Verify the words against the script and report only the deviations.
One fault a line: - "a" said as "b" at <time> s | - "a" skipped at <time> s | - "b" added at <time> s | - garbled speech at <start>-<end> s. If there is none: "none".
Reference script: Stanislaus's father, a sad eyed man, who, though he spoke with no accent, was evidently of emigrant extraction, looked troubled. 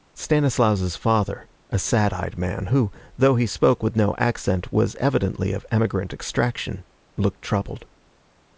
none